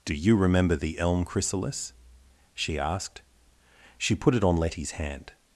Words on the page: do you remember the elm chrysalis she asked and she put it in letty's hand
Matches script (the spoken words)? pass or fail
fail